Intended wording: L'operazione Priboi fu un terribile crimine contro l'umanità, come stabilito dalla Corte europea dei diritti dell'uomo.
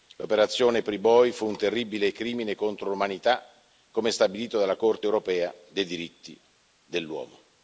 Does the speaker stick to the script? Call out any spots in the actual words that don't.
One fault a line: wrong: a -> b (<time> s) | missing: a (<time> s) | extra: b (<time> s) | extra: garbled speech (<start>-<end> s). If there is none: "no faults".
no faults